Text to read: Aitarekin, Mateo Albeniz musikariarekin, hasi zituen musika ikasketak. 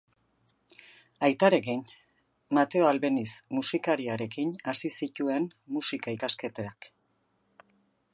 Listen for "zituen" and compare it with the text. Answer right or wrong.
right